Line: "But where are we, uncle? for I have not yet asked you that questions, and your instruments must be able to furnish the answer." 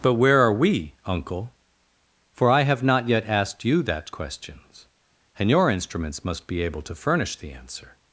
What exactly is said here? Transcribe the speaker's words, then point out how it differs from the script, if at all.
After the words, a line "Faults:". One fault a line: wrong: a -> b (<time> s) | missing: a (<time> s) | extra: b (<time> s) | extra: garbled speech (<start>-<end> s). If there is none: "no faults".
"But where are we, uncle? for I have not yet asked you that questions, and your instruments must be able to furnish the answer."
Faults:
no faults